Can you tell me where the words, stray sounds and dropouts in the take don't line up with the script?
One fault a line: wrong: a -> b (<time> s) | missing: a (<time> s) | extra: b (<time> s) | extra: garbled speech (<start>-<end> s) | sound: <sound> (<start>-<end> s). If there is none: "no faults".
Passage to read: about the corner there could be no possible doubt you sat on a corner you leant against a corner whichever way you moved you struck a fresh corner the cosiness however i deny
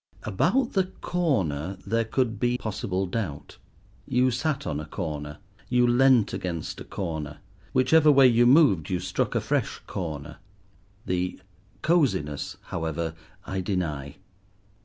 missing: no (2.6 s)